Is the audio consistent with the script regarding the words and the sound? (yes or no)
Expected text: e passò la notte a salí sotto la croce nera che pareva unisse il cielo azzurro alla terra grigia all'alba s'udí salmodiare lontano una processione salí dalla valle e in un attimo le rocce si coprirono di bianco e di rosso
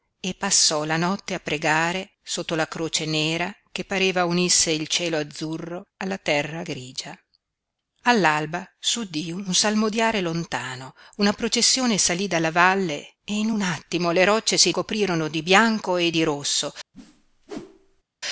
no